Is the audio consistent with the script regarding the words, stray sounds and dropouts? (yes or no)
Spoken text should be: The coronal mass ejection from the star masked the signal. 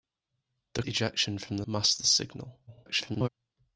no